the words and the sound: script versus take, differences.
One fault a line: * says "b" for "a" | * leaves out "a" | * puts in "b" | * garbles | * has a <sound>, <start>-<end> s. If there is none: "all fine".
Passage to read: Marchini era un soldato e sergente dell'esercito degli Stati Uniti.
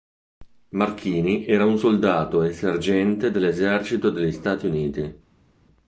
all fine